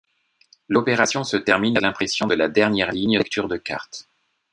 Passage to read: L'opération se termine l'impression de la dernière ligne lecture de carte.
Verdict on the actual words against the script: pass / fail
pass